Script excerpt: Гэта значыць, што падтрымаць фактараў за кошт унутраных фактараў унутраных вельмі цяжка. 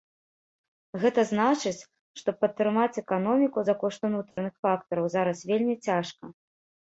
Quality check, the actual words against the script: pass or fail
fail